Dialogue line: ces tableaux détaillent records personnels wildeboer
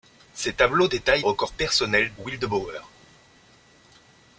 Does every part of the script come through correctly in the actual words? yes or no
yes